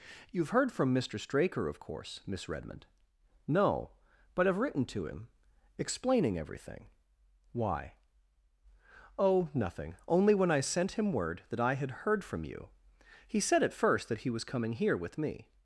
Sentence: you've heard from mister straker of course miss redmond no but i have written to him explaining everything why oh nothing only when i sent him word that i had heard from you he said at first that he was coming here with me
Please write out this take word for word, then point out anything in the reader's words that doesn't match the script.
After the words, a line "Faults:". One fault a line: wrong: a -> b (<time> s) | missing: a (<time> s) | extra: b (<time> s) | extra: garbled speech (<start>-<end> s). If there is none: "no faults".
you've heard from mister straker of course miss redmond no but i have written to him explaining everything why oh nothing only when i sent him word that i had heard from you he said at first that he was coming here with me
Faults:
no faults